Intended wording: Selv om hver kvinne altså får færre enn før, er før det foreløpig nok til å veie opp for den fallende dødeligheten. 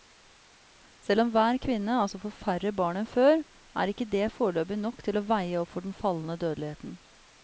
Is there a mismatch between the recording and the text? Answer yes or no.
yes